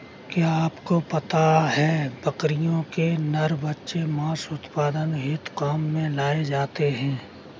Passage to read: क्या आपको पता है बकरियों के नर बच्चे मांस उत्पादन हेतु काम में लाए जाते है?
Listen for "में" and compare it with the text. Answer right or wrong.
right